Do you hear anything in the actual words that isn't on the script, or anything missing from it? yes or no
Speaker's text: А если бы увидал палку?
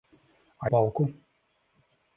yes